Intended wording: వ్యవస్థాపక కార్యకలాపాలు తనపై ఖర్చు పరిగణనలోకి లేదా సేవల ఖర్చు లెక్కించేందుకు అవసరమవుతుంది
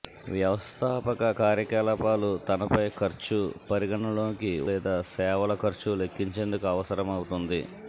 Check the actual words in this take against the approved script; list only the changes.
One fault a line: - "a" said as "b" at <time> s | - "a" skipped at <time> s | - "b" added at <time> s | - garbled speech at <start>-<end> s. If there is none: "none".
none